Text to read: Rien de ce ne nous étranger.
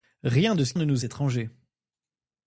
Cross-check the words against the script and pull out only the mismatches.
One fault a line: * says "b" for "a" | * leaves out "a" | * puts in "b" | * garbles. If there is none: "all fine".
all fine